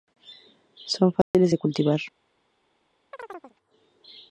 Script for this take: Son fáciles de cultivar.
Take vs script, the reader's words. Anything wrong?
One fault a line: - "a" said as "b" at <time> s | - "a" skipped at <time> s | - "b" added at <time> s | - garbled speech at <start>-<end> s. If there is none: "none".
none